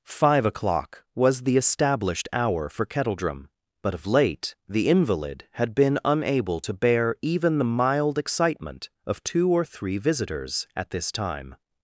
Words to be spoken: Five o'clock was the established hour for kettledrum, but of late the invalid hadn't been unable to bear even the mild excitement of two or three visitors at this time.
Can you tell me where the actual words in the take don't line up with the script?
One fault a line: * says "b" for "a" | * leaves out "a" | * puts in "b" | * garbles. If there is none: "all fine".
* says "had" for "hadn't"